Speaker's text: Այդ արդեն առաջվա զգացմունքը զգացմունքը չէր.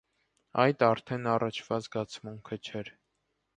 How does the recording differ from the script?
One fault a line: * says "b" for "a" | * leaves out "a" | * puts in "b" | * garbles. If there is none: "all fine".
* leaves out "զգացմունքը"